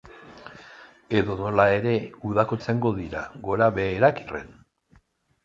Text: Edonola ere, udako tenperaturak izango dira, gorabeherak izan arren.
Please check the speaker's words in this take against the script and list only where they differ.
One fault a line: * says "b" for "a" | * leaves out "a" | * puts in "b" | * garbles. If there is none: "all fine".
* leaves out "tenperaturak"
* leaves out "izan"